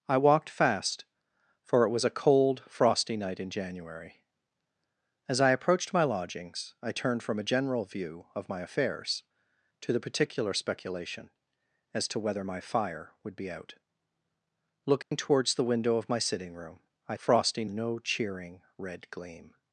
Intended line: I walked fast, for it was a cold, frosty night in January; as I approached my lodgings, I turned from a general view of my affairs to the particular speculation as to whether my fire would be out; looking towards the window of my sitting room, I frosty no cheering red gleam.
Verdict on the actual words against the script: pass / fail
pass